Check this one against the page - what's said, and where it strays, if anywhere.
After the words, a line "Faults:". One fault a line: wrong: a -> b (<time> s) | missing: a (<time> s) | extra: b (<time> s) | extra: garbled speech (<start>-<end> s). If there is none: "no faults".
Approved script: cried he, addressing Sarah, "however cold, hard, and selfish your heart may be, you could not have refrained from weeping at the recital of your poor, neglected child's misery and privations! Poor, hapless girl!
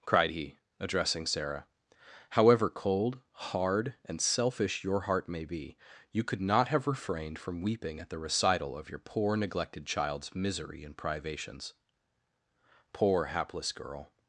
cried he, addressing Sarah, "however cold, hard, and selfish your heart may be, you could not have refrained from weeping at the recital of your poor, neglected child's misery and privations! Poor, hapless girl!
Faults:
no faults